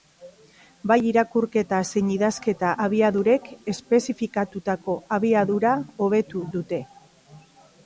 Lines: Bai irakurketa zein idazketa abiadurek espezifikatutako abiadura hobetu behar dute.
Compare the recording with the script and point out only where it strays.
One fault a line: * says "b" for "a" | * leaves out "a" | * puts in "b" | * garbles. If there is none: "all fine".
* leaves out "behar"